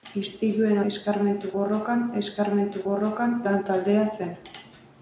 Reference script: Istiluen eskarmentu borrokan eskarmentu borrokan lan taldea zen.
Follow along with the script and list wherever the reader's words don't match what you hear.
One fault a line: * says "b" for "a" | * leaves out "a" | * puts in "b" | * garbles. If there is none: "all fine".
all fine